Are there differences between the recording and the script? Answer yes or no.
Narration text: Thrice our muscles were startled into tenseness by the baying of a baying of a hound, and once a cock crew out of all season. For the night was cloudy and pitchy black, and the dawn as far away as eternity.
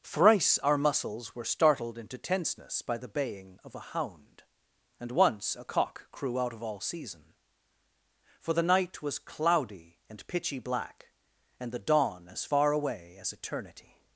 yes